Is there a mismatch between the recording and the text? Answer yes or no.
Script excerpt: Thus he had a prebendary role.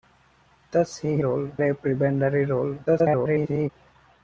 yes